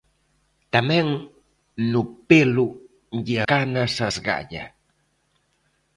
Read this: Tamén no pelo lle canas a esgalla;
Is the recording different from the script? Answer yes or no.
no